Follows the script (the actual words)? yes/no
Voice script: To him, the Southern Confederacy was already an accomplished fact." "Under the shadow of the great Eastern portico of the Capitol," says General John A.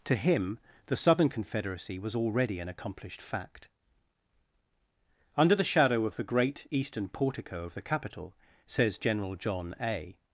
yes